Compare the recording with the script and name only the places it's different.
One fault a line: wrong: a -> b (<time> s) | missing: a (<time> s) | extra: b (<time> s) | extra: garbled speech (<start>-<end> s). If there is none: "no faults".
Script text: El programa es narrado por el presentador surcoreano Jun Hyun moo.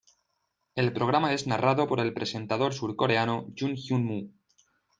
no faults